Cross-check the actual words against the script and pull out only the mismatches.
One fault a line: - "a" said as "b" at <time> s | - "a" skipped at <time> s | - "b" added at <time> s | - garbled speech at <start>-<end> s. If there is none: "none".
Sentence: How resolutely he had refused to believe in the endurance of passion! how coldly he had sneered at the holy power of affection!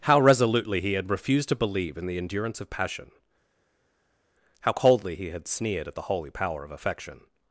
none